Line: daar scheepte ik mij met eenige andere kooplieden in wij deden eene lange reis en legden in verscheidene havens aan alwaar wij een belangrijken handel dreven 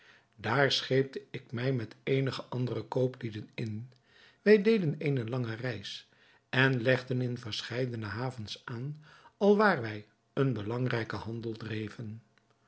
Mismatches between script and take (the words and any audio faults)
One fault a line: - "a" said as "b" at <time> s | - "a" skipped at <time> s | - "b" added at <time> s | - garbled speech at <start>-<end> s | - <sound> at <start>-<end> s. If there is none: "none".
none